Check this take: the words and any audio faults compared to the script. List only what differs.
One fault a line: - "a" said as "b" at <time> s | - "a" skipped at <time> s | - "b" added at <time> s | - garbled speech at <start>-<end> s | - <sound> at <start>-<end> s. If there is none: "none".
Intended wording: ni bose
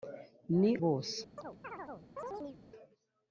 - chirp at 1.4-2.6 s